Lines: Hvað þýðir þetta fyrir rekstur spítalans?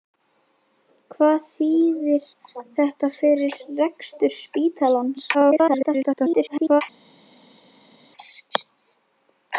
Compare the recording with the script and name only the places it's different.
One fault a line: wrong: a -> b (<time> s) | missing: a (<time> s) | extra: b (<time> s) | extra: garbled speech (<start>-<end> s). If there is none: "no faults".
extra: garbled speech (5.3-6.8 s)